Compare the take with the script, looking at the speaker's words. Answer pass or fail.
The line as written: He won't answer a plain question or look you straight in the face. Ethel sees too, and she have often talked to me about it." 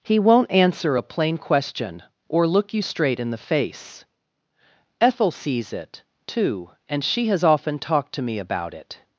fail